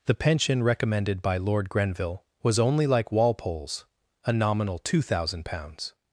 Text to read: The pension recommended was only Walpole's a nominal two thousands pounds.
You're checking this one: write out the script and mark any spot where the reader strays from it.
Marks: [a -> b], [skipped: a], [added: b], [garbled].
The pension recommended [added: by Lord Grenville] was only [added: like] Walpole's a nominal two [thousands -> thousand] pounds.